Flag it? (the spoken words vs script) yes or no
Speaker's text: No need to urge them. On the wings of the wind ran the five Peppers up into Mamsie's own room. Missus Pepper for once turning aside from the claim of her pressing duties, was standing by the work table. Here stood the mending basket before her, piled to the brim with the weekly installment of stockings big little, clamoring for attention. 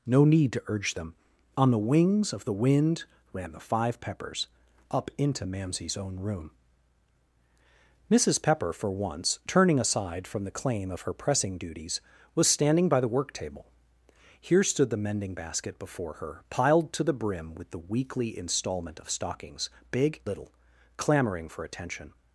no